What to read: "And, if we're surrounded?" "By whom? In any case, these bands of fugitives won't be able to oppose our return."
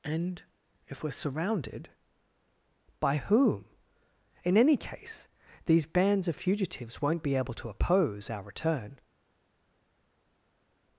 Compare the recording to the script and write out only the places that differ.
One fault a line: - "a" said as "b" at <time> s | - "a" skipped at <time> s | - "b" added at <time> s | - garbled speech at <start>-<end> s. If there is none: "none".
none